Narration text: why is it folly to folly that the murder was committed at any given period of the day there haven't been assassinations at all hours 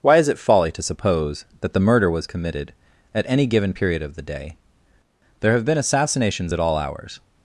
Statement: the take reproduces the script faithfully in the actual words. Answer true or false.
false